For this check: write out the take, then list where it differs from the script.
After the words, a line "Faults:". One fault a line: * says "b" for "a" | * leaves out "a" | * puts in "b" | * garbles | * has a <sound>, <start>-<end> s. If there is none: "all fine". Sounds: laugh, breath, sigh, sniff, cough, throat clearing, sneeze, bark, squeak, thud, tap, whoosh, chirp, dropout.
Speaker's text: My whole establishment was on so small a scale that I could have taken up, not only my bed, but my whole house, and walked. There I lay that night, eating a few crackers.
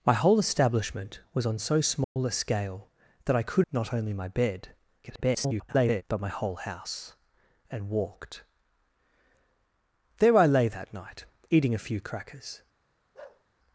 My whole establishment was on so small a scale that I could not only my bed, [garbled] but my whole house, and walked. There I lay that night, eating a few crackers.
Faults:
* has a dropout, 2.0-2.2 s
* leaves out "have taken up"
* garbles
* has a bark, 13.1-13.4 s